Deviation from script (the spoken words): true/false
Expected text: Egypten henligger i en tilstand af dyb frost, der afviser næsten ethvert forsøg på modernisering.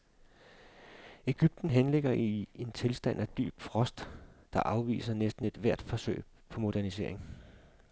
false